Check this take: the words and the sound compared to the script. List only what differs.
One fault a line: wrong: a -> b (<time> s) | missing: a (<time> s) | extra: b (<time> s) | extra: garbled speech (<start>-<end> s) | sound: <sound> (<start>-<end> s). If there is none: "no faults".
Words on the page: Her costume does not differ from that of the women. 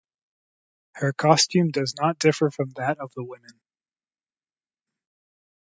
no faults